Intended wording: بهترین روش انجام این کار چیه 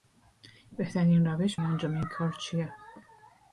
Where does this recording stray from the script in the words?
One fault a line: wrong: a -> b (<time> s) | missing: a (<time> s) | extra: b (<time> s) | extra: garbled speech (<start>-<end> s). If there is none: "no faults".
no faults